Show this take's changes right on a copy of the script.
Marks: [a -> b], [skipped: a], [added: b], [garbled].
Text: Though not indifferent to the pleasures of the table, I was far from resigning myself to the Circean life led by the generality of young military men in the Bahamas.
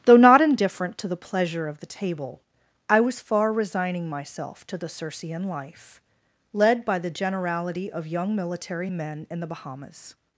Though not indifferent to the [pleasures -> pleasure] of the table, I was far [skipped: from] resigning myself to the Circean life led by the generality of young military men in the Bahamas.